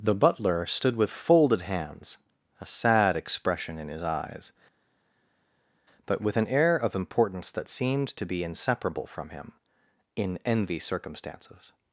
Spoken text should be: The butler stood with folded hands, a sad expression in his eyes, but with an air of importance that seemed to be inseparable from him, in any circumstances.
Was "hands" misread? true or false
false